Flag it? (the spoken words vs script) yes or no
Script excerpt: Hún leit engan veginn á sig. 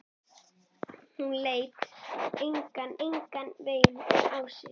yes